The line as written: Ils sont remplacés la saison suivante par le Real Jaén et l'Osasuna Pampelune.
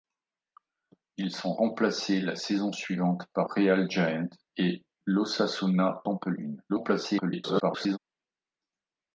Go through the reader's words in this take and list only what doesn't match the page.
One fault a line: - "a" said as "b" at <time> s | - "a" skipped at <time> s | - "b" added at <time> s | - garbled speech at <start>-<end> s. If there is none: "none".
- "le" skipped at 3.5 s
- garbled speech at 6.7-8.0 s